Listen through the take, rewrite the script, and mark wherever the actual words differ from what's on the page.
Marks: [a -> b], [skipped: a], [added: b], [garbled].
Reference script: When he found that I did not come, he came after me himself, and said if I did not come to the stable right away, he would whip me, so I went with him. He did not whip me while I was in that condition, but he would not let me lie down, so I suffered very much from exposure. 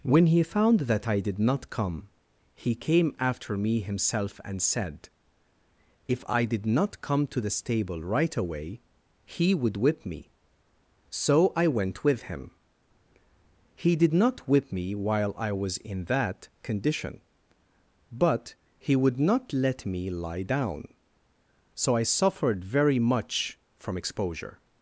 When he found that I did not come, he came after me himself, and said if I did not come to the stable right away, he would whip me, so I went with him. He did not whip me while I was in that condition, but he would not let me lie down, so I suffered very much from exposure.